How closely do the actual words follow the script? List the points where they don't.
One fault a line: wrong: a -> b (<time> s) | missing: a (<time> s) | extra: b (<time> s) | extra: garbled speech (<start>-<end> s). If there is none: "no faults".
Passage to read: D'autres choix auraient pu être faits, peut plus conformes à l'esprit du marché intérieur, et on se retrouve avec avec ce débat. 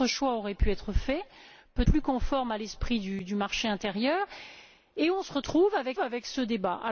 no faults